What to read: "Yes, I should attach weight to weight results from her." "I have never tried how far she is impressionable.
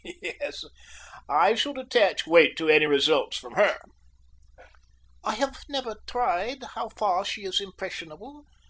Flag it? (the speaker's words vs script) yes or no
yes